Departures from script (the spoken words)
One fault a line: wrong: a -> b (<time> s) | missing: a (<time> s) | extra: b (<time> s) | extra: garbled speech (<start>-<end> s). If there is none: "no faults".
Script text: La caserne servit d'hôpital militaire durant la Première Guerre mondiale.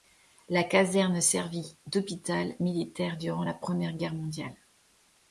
no faults